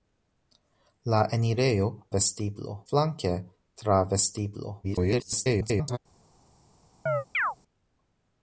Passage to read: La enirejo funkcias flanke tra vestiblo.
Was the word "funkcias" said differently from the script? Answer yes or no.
yes